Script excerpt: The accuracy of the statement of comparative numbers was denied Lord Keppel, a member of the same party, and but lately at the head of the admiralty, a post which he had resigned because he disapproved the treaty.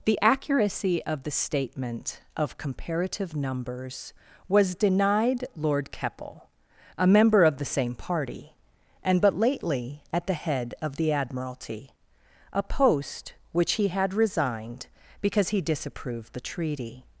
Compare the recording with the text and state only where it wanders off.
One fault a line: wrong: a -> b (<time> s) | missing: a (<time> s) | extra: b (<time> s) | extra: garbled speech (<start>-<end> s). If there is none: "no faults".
no faults